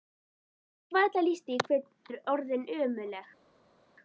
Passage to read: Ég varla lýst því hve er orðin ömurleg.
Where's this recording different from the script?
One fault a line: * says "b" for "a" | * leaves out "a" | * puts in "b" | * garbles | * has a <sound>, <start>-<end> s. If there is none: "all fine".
all fine